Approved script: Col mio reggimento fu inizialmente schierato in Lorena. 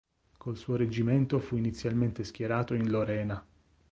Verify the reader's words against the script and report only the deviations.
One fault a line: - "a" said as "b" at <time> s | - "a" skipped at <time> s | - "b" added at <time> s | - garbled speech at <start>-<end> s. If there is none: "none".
- "mio" said as "suo" at 0.6 s